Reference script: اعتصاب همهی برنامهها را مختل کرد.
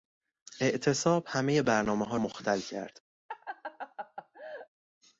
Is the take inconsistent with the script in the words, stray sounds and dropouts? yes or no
yes